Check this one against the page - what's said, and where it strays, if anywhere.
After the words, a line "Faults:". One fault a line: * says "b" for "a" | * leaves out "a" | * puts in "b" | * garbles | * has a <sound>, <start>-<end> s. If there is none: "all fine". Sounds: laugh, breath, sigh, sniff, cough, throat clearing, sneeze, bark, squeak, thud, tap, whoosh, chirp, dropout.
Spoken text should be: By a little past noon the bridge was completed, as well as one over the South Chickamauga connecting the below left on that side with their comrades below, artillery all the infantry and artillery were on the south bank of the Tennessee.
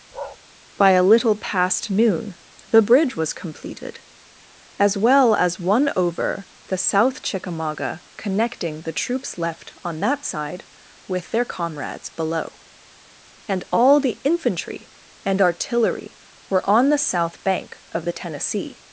By a little past noon the bridge was completed, as well as one over the South Chickamauga connecting the troops left on that side with their comrades below, and all the infantry and artillery were on the south bank of the Tennessee.
Faults:
* has a bark, 0.1-0.4 s
* says "troops" for "below"
* says "and" for "artillery"